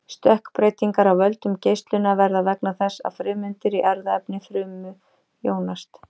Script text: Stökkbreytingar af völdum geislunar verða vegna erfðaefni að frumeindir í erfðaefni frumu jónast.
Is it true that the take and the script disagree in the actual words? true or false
true